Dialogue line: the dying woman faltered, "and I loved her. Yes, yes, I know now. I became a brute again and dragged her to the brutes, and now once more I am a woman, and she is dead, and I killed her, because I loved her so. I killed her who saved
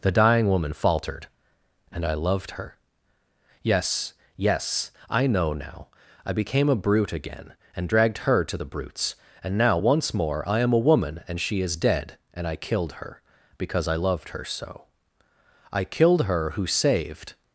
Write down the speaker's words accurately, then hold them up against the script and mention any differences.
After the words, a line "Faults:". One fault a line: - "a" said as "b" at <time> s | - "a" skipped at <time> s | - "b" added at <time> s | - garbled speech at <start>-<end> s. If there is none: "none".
the dying woman faltered, "and I loved her. Yes, yes, I know now. I became a brute again and dragged her to the brutes, and now once more I am a woman, and she is dead, and I killed her, because I loved her so. I killed her who saved
Faults:
none